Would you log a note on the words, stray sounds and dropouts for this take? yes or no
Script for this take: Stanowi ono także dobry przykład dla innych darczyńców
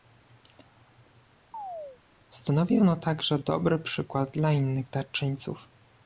yes